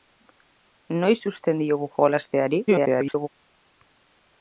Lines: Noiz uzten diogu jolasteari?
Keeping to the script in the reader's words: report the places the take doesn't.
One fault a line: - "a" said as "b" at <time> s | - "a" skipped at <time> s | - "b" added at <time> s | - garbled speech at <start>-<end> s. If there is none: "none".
- garbled speech at 2.7-3.3 s